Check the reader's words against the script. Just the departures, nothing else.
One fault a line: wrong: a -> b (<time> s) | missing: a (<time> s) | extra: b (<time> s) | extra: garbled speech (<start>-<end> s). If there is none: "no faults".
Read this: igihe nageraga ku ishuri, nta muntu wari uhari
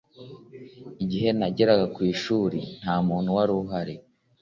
no faults